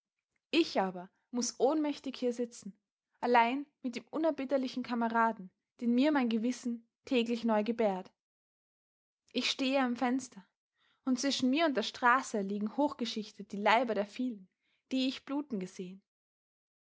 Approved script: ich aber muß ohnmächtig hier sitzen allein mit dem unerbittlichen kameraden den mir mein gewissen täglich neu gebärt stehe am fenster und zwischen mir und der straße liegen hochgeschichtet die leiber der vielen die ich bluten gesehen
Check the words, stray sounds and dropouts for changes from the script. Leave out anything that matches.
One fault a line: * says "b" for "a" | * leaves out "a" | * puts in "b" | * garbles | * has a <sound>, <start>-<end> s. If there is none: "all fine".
* puts in "ich"